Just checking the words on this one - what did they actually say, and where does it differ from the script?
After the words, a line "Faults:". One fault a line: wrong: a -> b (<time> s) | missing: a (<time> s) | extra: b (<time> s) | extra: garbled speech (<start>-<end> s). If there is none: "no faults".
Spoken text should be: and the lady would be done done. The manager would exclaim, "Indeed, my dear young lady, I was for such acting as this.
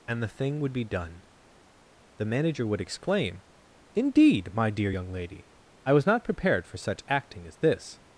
and the thing would be done. The manager would exclaim, "Indeed, my dear young lady, I was not prepared for such acting as this.
Faults:
wrong: lady -> thing (0.3 s)
missing: done (1.2 s)
extra: not prepared (6.1 s)